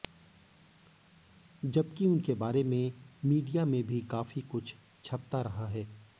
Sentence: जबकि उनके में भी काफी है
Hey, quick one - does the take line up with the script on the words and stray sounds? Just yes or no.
no